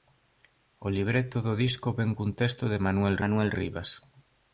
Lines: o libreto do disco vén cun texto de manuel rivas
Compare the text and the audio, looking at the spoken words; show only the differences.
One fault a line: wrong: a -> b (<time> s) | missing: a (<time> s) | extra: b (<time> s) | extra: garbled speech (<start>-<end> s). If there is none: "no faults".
extra: manuel (3.2 s)